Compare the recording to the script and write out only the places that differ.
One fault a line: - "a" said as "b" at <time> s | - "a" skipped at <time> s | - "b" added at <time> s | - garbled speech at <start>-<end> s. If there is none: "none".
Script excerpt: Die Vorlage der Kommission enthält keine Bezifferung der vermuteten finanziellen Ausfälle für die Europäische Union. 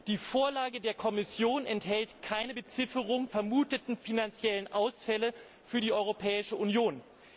- "der" skipped at 3.3 s